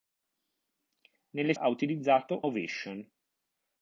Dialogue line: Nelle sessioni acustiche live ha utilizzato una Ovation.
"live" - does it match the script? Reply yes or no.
no